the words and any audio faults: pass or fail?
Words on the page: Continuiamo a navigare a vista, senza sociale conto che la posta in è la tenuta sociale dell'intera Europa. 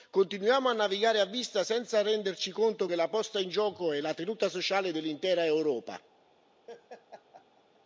fail